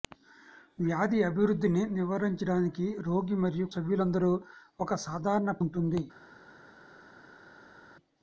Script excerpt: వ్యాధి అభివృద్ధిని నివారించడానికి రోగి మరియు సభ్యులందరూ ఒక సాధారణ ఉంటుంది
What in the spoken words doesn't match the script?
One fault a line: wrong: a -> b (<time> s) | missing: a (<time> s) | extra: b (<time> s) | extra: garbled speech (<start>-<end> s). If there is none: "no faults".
no faults